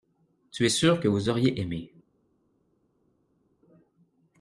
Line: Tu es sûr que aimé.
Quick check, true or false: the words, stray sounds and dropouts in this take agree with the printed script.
false